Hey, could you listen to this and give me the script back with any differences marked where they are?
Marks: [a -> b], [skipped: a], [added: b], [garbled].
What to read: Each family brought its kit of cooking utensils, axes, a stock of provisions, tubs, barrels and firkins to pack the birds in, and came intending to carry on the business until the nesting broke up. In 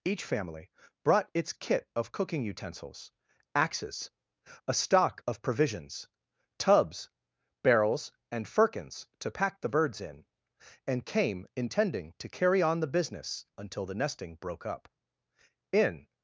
Each family brought its kit of cooking utensils, axes, a stock of provisions, tubs, barrels and firkins to pack the birds in, and came intending to carry on the business until the nesting broke up. In